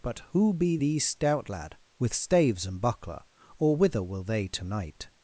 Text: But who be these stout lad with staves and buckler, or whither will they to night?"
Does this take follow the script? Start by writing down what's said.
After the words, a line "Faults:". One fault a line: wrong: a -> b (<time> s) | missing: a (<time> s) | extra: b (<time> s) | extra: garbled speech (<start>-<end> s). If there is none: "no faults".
But who be these stout lad with staves and buckler, or whither will they to night?"
Faults:
no faults